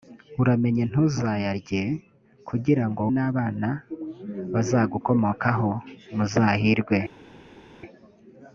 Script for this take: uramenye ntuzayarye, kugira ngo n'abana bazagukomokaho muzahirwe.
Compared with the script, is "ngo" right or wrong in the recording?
right